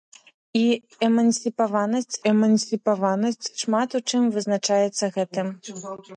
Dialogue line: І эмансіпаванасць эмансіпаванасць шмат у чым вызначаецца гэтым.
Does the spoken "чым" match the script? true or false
true